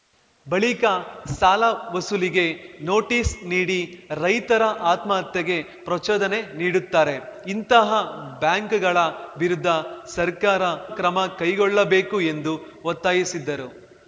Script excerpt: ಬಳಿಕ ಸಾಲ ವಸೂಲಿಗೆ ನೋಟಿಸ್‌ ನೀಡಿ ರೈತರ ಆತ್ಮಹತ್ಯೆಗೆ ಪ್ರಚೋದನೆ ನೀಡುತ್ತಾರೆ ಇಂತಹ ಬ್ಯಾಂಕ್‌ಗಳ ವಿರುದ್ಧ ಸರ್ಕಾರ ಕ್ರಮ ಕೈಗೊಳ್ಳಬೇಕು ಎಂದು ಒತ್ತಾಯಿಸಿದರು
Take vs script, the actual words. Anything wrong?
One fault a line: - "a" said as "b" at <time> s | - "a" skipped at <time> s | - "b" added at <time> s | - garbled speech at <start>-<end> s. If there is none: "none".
none